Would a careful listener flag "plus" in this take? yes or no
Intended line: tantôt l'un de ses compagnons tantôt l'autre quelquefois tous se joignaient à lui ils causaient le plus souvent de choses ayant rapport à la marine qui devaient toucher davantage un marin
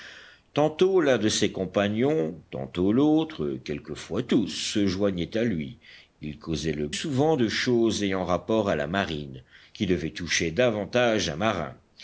yes